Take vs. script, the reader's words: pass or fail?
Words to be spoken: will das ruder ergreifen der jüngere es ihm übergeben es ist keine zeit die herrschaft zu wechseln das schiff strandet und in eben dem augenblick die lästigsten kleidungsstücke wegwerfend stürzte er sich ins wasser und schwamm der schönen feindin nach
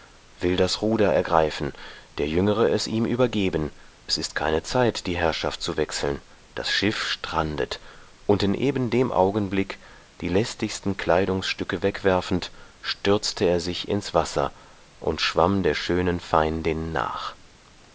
pass